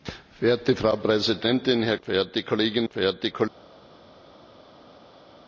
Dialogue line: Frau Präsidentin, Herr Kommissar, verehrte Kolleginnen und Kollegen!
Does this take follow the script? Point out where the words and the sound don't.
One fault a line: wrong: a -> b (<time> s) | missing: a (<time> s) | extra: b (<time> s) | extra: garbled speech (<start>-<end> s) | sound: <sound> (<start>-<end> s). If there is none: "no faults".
missing: Kommissar (2.0 s)
wrong: und -> verehrte (2.9 s)